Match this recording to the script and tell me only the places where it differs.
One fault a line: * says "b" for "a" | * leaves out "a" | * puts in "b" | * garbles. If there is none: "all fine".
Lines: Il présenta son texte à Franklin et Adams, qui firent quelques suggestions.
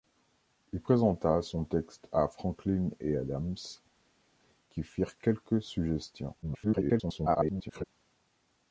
* garbles